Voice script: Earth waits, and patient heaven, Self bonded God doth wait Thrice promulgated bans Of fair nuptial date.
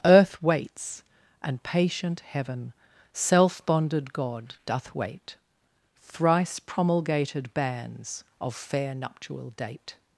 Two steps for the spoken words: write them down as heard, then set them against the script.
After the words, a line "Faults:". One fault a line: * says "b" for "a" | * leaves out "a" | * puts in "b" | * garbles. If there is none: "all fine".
Earth waits, and patient heaven, Self bonded God doth wait Thrice promulgated bans Of fair nuptial date.
Faults:
all fine